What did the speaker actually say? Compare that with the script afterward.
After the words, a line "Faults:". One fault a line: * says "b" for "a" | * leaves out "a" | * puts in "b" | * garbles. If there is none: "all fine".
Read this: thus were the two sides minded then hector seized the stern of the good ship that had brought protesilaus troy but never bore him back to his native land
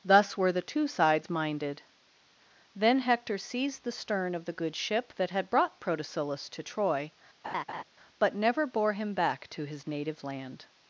thus were the two sides minded then hector seized the stern of the good ship that had brought protesilaus to troy but never bore him back to his native land
Faults:
* puts in "to"